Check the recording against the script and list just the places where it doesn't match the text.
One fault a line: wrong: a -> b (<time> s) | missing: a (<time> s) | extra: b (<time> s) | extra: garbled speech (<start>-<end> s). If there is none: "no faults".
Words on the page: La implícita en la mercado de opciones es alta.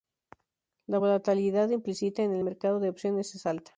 extra: volatilidad (0.9 s)
wrong: la -> el (2.3 s)